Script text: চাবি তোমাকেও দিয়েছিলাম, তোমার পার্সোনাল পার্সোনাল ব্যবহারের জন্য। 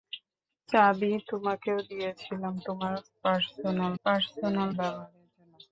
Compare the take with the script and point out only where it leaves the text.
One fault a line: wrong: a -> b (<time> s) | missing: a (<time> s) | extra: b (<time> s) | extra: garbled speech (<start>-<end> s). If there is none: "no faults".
no faults